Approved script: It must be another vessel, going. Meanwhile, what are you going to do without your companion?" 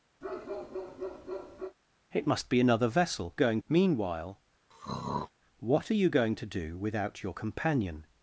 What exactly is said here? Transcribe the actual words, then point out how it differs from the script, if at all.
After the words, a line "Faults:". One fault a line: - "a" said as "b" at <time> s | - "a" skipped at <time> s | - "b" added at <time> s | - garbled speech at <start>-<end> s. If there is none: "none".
It must be another vessel, going. Meanwhile, what are you going to do without your companion?"
Faults:
none